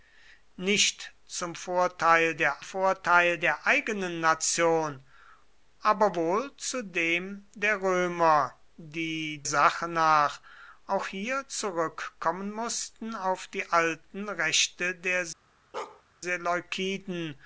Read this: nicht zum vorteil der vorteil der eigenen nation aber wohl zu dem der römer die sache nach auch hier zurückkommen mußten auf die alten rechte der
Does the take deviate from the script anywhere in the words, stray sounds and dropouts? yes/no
yes